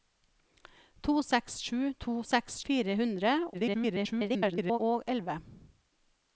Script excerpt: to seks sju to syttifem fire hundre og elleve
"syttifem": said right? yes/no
no